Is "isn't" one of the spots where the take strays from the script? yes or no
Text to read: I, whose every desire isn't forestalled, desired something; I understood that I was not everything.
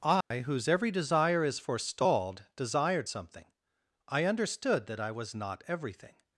yes